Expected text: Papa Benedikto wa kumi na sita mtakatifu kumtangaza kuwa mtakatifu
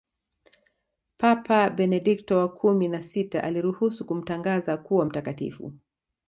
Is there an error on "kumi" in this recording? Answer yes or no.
no